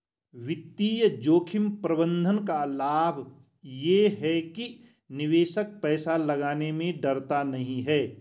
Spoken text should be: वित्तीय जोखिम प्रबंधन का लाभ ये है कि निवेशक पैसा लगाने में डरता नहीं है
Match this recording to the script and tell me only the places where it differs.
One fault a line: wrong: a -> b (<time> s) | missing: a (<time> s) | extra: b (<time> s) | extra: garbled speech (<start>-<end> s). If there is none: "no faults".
no faults